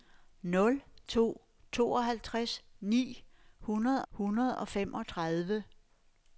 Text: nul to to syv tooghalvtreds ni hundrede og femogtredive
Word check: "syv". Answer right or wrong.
wrong